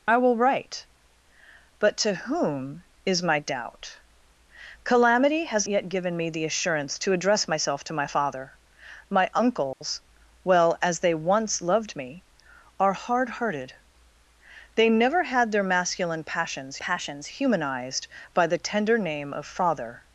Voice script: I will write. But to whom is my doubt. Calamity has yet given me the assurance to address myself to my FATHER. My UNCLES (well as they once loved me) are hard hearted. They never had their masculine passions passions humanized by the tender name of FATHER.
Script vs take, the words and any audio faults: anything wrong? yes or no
yes